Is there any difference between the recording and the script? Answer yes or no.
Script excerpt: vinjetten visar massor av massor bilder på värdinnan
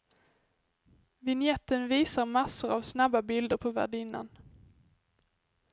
yes